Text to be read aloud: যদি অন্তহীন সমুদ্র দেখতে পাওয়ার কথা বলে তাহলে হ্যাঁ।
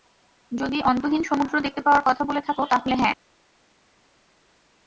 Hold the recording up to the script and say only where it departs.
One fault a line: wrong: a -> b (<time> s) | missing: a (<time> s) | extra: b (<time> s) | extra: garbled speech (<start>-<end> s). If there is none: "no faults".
extra: থাকো (2.4 s)